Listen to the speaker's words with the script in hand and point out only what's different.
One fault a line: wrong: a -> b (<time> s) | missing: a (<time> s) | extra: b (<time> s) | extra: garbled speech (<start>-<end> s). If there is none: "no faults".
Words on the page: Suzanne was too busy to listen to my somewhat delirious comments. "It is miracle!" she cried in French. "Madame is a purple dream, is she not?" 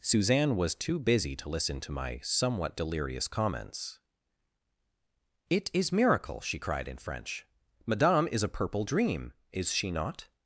no faults